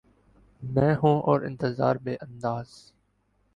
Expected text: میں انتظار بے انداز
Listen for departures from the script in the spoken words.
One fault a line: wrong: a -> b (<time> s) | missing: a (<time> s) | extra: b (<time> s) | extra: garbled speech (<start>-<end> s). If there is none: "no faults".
extra: ہوں اور (0.9 s)